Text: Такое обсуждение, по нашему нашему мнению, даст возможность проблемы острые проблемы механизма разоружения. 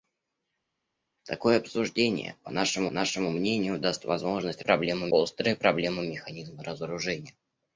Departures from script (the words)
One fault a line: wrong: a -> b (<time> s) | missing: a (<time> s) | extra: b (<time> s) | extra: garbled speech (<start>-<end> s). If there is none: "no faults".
no faults